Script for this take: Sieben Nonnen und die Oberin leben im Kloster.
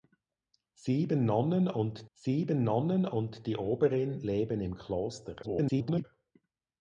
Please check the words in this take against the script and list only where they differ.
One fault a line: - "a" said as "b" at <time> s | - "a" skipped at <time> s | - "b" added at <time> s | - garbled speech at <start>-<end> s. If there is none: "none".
- "sieben Nonnen und" added at 2.1 s
- garbled speech at 5.4-6.0 s